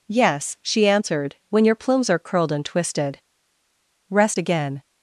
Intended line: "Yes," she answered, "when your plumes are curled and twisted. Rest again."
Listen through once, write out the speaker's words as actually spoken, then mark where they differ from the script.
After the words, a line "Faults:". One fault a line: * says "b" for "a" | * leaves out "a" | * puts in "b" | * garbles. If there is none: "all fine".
"Yes," she answered, "when your plumes are curled and twisted. Rest again."
Faults:
all fine